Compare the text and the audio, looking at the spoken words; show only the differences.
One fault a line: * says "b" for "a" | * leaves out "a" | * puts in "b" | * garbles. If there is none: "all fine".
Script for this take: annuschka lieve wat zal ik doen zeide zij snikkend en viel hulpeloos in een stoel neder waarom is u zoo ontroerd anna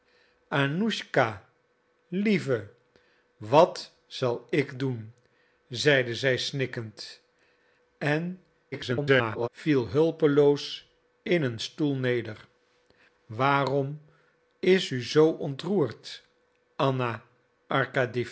* garbles